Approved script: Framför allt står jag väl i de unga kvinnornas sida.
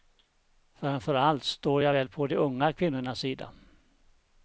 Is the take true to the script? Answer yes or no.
no